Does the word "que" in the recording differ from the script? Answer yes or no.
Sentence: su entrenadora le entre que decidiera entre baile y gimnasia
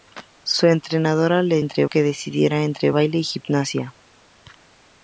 no